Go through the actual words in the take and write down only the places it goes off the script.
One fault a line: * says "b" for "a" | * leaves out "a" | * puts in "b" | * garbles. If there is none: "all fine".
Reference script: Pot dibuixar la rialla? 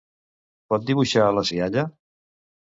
all fine